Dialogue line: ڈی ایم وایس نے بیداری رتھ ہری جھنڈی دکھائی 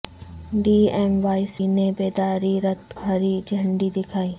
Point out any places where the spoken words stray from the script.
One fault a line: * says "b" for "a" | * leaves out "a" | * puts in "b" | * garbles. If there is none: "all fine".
all fine